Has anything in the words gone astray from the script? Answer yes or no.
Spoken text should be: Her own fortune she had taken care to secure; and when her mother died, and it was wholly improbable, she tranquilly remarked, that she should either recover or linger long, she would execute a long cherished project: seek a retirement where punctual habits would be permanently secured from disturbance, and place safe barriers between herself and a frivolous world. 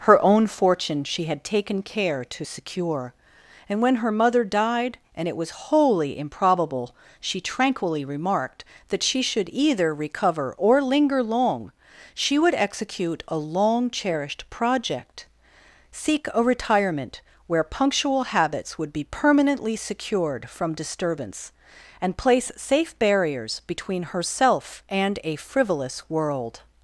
no